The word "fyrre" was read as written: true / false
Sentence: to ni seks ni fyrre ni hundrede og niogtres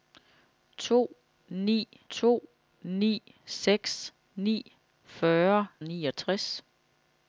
false